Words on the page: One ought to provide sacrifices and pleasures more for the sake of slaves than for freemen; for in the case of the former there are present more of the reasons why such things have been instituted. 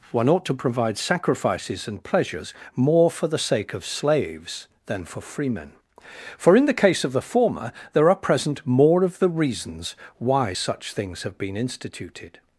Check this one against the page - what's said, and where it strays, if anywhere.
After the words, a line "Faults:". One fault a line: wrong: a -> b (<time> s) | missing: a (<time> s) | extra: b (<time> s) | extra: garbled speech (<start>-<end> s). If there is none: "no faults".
One ought to provide sacrifices and pleasures more for the sake of slaves than for freemen; for in the case of the former there are present more of the reasons why such things have been instituted.
Faults:
no faults